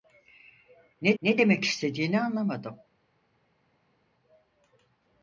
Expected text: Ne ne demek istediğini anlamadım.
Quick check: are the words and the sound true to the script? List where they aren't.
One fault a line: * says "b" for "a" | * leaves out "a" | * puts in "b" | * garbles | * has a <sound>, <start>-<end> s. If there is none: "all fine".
all fine